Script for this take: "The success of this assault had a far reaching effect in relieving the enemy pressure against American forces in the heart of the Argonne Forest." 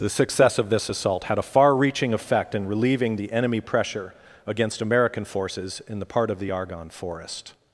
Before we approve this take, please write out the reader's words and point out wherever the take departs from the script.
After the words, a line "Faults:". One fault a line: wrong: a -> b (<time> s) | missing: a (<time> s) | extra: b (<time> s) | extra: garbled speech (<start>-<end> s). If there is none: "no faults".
"The success of this assault had a far reaching effect in relieving the enemy pressure against American forces in the part of the Argonne Forest."
Faults:
wrong: heart -> part (6.1 s)